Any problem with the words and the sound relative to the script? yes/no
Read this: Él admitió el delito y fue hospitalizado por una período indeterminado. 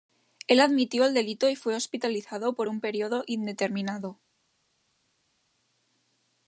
yes